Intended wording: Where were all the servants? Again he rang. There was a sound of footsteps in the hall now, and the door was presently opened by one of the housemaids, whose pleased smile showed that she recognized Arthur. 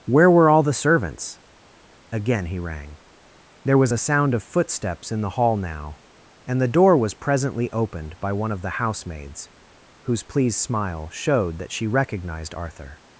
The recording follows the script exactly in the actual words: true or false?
true